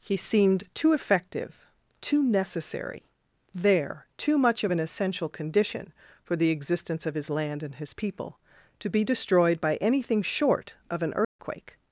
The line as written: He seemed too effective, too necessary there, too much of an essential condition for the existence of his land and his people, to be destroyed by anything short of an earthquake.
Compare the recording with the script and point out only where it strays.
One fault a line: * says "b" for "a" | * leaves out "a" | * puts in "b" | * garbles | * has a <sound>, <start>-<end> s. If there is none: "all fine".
* has a dropout, 11.2-11.4 s